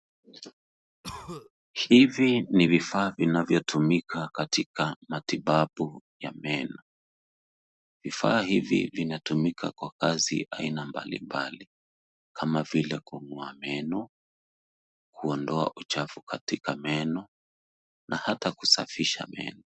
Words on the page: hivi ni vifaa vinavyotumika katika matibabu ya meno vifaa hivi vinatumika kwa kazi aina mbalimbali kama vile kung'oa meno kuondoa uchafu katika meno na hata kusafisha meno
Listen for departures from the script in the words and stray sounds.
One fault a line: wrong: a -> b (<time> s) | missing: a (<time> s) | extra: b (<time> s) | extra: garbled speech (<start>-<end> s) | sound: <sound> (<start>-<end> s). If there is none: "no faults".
sound: cough (1.0-1.5 s)